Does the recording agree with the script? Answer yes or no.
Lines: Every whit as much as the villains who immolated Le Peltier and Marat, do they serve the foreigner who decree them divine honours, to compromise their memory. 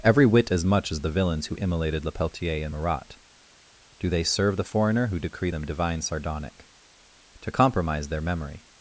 no